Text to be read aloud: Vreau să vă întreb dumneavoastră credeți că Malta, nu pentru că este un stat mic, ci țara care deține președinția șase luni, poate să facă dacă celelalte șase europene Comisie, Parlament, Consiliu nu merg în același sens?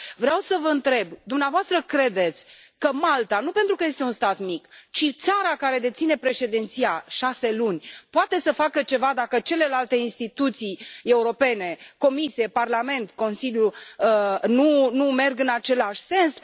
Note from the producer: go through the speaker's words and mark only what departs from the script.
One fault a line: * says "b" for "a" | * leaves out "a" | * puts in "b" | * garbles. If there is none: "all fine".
* puts in "ceva"
* says "instituții" for "șase"